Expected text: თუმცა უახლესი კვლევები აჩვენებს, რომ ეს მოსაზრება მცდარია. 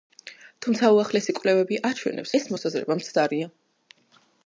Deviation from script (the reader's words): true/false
true